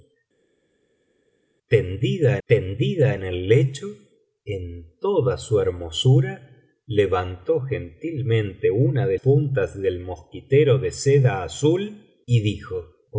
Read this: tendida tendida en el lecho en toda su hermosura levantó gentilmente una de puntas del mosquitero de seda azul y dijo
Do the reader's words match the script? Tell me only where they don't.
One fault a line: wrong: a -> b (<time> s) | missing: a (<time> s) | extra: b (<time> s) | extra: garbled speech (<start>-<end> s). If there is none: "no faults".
no faults